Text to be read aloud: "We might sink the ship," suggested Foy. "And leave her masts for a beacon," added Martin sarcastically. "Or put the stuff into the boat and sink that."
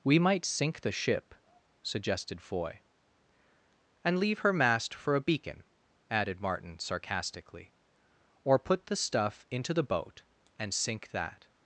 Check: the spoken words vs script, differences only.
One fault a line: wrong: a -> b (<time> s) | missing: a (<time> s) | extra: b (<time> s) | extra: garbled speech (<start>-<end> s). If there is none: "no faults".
wrong: masts -> mast (4.5 s)